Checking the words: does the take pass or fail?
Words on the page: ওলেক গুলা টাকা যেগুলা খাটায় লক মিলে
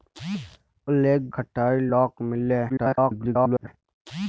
fail